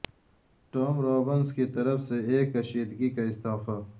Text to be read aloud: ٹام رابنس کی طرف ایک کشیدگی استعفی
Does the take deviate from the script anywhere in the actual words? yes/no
yes